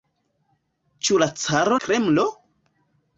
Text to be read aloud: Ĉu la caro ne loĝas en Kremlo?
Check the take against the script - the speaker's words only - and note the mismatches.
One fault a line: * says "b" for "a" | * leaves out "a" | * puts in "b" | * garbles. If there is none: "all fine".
* leaves out "ne loĝas en"